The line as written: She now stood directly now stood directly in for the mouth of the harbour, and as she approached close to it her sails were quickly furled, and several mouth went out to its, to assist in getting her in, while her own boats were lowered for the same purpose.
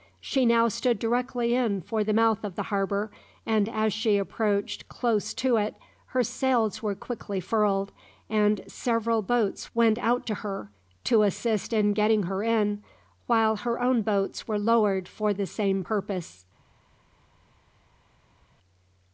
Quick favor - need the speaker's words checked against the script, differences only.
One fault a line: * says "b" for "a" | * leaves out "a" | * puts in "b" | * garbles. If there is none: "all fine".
* leaves out "now stood directly"
* says "boats" for "mouth"
* says "her" for "its"